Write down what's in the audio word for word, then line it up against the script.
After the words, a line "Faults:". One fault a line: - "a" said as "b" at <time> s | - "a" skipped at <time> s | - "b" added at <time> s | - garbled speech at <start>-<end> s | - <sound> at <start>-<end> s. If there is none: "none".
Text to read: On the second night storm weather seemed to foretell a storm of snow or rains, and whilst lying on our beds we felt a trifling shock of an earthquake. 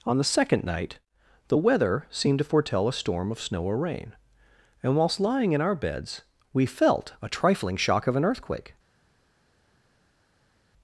On the second night the weather seemed to foretell a storm of snow or rain, and whilst lying in our beds we felt a trifling shock of an earthquake.
Faults:
- "storm" said as "the" at 1.5 s
- "rains" said as "rain" at 3.8 s
- "on" said as "in" at 5.5 s